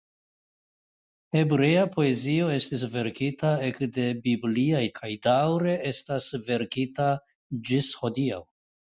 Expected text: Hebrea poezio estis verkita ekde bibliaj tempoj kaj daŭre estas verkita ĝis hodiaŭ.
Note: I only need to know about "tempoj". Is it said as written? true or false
false